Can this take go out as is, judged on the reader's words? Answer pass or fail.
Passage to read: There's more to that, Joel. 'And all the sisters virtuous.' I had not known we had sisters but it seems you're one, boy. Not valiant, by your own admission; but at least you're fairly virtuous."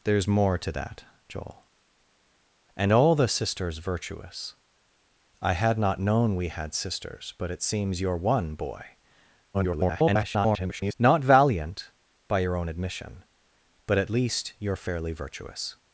fail